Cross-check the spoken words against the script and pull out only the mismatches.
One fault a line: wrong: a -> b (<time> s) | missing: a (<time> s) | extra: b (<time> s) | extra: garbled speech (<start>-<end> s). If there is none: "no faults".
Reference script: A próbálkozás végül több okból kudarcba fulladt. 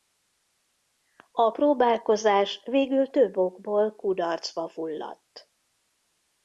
no faults